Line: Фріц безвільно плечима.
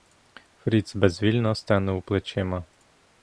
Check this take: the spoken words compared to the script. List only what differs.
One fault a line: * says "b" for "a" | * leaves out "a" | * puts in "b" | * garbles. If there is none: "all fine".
* puts in "стенув"